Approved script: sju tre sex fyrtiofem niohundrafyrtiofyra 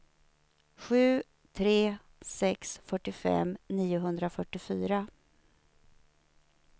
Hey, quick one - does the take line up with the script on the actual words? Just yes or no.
yes